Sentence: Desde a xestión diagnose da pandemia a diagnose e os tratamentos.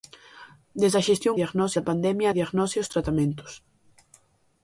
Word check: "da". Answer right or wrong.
right